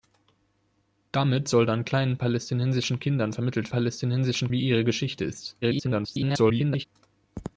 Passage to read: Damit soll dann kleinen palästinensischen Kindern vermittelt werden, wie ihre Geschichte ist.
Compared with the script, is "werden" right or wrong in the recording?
wrong